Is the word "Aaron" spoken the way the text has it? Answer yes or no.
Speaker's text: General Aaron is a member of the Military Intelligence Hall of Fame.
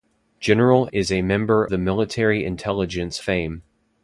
no